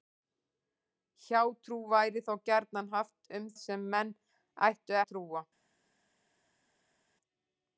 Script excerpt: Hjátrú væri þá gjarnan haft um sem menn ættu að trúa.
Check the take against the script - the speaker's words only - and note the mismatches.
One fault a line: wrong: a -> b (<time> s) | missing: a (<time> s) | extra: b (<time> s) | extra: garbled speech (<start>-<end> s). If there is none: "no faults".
no faults